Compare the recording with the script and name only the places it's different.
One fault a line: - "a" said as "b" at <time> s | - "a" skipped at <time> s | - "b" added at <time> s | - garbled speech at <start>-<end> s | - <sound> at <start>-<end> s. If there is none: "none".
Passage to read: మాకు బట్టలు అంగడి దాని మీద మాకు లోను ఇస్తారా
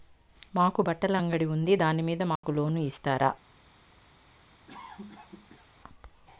- "ఉంది" added at 1.5 s
- dropout at 2.4-2.4 s
- cough at 4.7-5.7 s